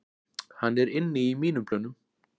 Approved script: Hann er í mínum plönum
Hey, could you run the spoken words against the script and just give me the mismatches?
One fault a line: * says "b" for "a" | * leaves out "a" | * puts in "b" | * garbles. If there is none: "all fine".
* puts in "inni"